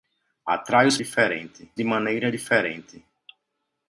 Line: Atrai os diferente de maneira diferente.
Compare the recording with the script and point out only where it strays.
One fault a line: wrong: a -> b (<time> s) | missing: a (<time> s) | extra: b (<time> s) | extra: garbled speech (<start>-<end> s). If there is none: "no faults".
no faults